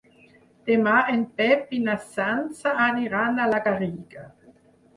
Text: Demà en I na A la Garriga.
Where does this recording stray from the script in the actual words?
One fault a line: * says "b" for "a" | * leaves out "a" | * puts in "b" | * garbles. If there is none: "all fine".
* puts in "Pep"
* puts in "Sança aniran"